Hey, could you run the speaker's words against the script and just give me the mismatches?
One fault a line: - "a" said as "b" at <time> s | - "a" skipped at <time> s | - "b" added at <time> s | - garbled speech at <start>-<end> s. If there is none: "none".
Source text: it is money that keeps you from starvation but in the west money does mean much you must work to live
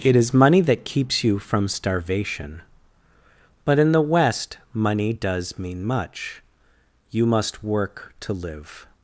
none